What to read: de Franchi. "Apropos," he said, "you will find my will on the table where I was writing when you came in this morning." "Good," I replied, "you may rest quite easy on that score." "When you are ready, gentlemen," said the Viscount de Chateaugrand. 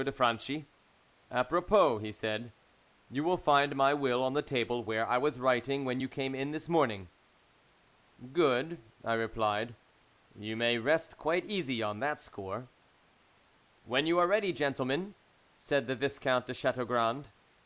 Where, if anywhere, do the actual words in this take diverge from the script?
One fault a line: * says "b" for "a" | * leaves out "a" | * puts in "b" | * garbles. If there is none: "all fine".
all fine